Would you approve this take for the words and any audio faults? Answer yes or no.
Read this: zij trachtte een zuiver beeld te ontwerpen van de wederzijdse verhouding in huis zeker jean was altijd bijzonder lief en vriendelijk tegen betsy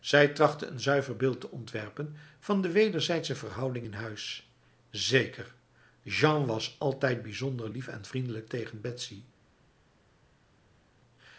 yes